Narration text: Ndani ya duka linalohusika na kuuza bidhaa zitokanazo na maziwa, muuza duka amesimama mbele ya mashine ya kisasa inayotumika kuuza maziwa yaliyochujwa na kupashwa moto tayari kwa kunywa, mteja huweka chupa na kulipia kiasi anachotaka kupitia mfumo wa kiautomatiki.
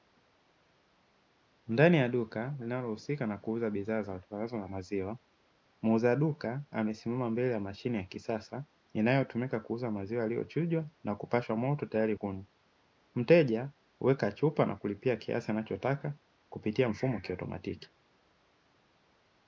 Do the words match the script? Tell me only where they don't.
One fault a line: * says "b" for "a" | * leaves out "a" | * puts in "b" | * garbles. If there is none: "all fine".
* leaves out "kwa"